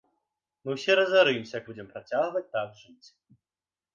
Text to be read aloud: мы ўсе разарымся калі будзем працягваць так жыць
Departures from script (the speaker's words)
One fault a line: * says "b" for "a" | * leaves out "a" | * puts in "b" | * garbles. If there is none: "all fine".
* leaves out "калі"